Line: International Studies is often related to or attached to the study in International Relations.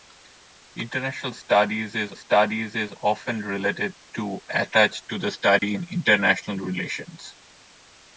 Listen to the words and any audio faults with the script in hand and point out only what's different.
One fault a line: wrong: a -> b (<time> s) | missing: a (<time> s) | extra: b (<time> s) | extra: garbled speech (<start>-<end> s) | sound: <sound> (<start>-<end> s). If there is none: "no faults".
extra: Studies is (2.1 s)
missing: or (4.4 s)
sound: dropout (5.6-5.6 s)